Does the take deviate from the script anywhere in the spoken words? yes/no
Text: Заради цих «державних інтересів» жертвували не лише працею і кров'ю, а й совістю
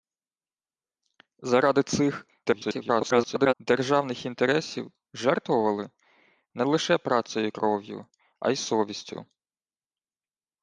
yes